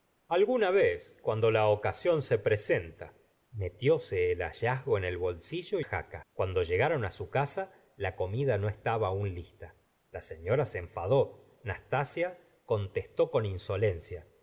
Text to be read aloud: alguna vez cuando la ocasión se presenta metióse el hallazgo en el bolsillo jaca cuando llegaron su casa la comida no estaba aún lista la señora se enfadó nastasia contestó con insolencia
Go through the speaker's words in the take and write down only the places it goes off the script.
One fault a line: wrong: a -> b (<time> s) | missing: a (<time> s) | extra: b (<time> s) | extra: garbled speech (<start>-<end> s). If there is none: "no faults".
no faults